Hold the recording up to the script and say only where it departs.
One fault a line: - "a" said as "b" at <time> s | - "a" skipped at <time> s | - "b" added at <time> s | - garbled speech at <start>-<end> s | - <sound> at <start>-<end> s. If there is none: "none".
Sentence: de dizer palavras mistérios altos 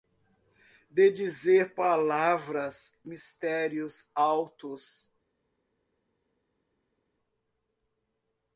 none